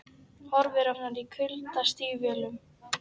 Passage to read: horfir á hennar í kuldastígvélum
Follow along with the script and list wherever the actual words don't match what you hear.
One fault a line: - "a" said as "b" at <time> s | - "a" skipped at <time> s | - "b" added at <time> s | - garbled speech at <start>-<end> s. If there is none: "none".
none